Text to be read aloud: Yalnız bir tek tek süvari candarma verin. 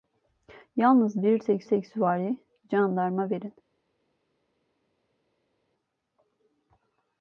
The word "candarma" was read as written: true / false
true